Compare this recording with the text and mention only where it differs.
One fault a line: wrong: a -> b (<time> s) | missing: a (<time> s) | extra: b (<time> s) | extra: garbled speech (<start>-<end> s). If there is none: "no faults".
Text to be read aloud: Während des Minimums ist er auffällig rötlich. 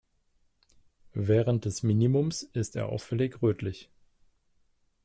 no faults